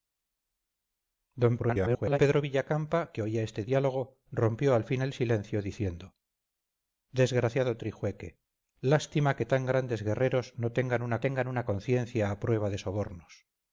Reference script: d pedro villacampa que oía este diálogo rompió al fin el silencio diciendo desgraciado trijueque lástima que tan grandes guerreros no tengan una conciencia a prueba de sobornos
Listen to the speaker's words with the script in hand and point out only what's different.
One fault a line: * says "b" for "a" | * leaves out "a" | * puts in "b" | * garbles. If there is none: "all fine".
* garbles
* puts in "tengan una"